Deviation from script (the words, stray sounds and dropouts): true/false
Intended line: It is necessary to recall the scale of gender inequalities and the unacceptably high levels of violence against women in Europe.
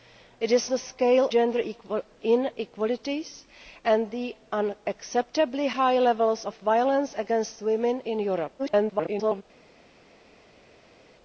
true